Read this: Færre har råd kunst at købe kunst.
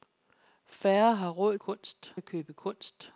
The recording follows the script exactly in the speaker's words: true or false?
true